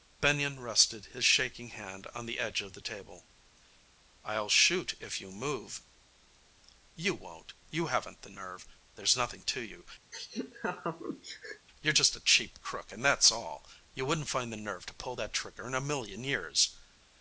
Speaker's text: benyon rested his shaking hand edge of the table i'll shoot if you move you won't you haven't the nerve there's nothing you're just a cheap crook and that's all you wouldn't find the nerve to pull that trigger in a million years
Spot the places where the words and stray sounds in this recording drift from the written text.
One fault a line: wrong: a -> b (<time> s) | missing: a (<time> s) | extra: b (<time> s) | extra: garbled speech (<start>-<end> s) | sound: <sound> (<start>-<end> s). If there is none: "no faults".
extra: on the (2.1 s)
extra: to you (9.4 s)
sound: laugh (10.1-11.7 s)